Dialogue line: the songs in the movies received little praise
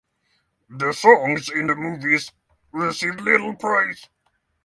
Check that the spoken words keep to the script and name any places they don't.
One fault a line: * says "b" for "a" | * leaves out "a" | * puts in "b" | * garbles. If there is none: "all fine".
all fine